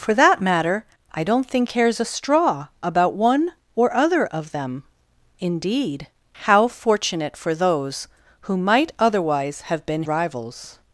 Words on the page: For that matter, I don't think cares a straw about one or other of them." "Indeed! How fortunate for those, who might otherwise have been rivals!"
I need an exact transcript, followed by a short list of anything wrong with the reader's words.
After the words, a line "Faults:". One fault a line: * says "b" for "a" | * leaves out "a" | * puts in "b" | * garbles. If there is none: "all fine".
For that matter, I don't think cares a straw about one or other of them." "Indeed! How fortunate for those, who might otherwise have been rivals!"
Faults:
all fine